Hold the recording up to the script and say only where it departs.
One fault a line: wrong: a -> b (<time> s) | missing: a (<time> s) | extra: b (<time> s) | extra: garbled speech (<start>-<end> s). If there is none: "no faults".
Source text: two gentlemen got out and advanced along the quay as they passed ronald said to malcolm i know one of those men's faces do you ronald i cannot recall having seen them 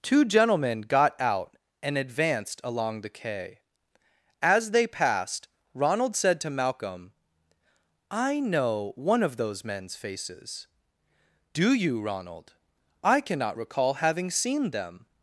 no faults